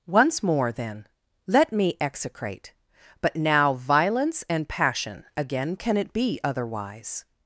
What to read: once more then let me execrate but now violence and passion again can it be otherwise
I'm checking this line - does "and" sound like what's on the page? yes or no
yes